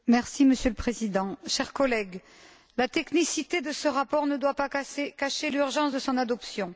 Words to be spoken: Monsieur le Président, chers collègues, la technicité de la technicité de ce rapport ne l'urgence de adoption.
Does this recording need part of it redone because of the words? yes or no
yes